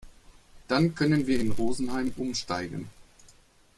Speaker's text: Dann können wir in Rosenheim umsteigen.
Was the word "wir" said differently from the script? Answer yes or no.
no